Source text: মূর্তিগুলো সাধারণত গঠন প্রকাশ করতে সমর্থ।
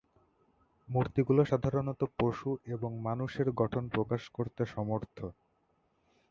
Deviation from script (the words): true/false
true